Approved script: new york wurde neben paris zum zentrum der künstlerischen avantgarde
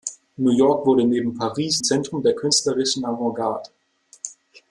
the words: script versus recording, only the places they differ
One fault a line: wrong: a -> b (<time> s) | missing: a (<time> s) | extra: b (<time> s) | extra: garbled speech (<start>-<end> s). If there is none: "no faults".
missing: zum (1.8 s)